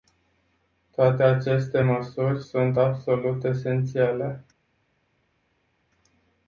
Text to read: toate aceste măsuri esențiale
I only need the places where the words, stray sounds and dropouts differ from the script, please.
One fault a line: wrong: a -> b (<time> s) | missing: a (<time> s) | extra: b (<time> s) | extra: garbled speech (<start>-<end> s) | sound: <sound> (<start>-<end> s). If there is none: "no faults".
extra: sunt absolut (2.4 s)